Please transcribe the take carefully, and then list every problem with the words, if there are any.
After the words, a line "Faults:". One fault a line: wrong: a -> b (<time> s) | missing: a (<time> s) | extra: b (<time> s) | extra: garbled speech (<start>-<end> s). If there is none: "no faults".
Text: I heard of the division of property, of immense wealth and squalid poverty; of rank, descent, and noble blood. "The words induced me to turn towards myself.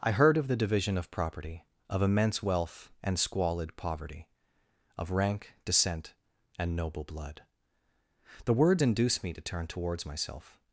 I heard of the division of property, of immense wealth and squalid poverty; of rank, descent, and noble blood. "The words induced me to turn towards myself.
Faults:
no faults